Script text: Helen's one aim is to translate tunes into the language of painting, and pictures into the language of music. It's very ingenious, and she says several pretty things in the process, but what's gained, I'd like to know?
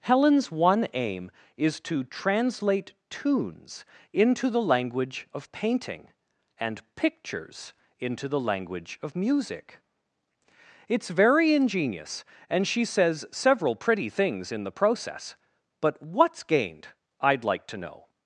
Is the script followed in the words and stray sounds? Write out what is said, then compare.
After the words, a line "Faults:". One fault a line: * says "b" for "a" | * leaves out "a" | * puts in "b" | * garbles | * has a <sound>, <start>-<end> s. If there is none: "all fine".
Helen's one aim is to translate tunes into the language of painting, and pictures into the language of music. It's very ingenious, and she says several pretty things in the process, but what's gained, I'd like to know?
Faults:
all fine